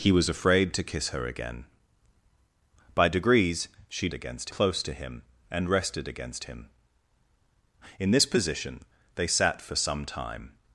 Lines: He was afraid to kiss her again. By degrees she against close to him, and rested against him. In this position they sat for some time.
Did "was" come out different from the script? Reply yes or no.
no